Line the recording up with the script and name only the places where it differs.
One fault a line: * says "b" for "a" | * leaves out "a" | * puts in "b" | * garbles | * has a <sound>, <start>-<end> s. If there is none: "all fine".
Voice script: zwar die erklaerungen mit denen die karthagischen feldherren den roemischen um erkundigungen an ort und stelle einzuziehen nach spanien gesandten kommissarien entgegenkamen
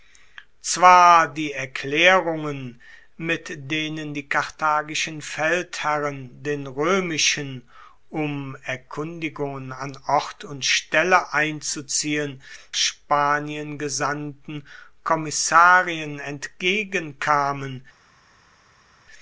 * leaves out "nach"